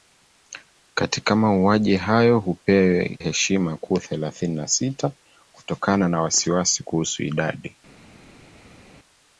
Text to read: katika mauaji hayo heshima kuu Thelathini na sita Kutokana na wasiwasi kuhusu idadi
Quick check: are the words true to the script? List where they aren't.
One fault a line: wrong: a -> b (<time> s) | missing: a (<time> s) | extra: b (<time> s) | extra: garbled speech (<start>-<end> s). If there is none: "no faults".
no faults